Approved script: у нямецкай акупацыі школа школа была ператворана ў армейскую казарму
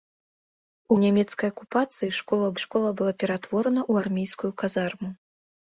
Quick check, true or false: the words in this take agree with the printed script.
true